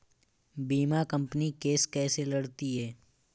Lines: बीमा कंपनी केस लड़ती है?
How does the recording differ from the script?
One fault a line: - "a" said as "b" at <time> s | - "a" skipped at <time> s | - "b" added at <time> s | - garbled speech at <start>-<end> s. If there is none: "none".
- "कैसे" added at 1.9 s